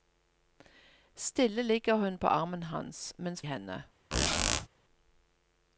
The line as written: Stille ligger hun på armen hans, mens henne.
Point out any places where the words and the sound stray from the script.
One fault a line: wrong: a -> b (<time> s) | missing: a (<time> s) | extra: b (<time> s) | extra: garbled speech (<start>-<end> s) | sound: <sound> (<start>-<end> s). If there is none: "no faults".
sound: squeak (4.1-4.7 s)